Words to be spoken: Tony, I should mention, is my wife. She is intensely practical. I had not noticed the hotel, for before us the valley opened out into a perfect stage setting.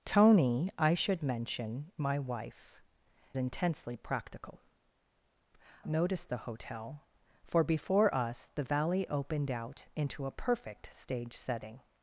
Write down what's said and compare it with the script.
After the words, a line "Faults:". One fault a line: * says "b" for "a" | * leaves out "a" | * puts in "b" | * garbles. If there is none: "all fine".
Tony, I should mention, my wife. Intensely practical. noticed the hotel, for before us the valley opened out into a perfect stage setting.
Faults:
* leaves out "is"
* leaves out "She is"
* leaves out "I had not"